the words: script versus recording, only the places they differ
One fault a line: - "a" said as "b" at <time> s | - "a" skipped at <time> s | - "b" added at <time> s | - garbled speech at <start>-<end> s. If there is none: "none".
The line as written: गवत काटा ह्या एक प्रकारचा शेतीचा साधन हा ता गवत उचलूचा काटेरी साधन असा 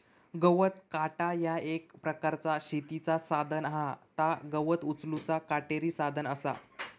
none